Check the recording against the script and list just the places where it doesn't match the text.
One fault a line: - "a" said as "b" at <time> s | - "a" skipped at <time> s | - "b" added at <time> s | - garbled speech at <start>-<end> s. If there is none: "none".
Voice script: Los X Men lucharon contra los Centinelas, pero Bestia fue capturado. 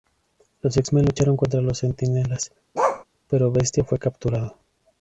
none